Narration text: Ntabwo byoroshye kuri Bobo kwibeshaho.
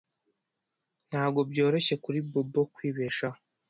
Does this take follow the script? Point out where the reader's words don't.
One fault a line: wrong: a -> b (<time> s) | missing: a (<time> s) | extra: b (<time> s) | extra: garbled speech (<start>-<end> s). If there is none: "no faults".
no faults